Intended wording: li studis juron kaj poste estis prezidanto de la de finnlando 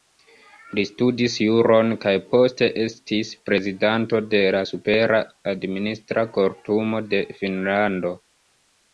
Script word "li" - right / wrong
right